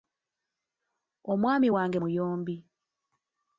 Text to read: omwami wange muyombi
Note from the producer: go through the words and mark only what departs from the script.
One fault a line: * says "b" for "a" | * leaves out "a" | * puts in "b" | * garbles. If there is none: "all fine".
all fine